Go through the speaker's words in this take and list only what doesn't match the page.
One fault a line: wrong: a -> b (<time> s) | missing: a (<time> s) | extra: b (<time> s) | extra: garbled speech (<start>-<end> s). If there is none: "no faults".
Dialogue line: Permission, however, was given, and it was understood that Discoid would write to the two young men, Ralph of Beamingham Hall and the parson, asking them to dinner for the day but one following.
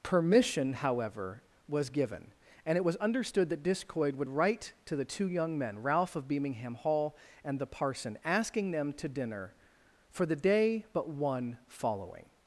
no faults